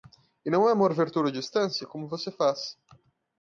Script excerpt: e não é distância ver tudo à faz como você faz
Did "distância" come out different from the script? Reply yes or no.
yes